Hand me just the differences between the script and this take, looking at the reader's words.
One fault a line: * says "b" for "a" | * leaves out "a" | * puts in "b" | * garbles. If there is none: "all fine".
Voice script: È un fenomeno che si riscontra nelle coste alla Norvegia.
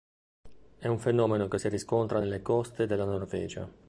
* says "della" for "alla"